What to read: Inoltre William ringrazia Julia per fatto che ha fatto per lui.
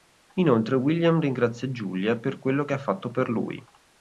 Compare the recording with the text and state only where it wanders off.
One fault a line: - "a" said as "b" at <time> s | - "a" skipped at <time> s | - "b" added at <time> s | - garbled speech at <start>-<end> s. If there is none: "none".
- "fatto" said as "quello" at 2.4 s